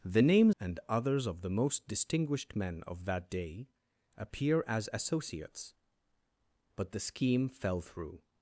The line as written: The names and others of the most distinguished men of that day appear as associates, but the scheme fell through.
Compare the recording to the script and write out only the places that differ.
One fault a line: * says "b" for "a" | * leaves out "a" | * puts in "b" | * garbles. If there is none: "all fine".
all fine